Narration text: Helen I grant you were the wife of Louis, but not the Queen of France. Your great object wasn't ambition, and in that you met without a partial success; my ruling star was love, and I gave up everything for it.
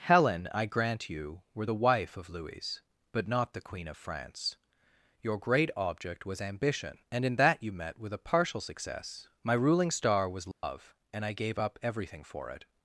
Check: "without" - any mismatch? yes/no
yes